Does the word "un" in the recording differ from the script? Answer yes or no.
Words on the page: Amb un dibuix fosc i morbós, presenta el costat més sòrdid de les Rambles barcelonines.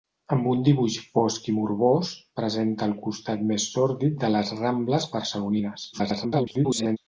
no